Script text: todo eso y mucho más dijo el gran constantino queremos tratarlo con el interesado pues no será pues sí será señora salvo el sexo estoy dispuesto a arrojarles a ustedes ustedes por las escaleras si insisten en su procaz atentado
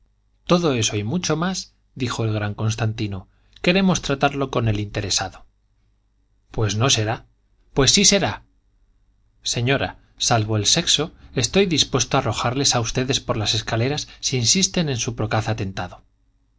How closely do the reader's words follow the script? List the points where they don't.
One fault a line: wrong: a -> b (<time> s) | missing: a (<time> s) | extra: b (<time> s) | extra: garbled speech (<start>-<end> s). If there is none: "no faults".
missing: ustedes (13.2 s)